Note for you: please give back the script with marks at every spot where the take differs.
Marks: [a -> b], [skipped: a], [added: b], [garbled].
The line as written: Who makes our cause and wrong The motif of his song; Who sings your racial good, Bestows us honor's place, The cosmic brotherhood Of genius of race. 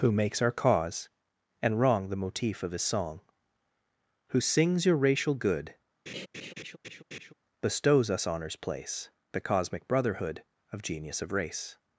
Who makes our cause and wrong The motif of his song; Who sings your racial good, Bestows us honor's place, The cosmic brotherhood Of genius of race.